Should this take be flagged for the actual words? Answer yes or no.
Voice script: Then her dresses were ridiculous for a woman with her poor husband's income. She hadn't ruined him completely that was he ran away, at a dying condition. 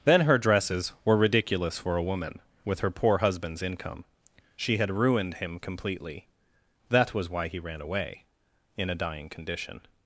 yes